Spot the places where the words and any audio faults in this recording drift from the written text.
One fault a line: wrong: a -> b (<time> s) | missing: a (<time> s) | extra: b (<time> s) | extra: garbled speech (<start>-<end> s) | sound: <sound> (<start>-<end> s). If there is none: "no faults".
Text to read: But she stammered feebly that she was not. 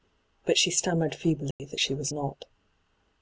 sound: dropout (1.5-1.6 s)